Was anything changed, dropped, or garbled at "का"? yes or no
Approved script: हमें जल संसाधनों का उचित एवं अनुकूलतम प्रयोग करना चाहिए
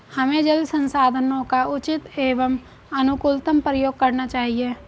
no